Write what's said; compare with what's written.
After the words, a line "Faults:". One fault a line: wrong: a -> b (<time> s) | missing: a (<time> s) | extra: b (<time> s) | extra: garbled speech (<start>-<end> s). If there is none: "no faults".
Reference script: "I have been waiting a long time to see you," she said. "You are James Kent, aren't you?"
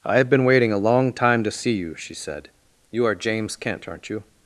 "I have been waiting a long time to see you," she said. "You are James Kent, aren't you?"
Faults:
no faults